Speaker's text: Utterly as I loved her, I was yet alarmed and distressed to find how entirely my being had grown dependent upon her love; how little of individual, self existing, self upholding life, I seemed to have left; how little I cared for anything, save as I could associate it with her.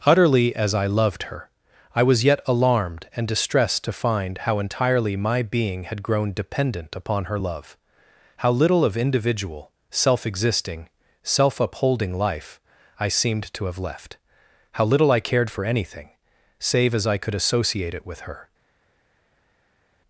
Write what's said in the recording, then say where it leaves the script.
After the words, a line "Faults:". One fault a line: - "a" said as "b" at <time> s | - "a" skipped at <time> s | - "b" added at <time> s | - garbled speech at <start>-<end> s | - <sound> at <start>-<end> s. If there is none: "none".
Utterly as I loved her, I was yet alarmed and distressed to find how entirely my being had grown dependent upon her love; how little of individual, self existing, self upholding life, I seemed to have left; how little I cared for anything, save as I could associate it with her.
Faults:
none